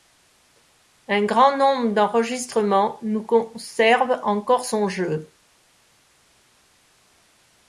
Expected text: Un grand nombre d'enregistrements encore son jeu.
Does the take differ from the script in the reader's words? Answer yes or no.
yes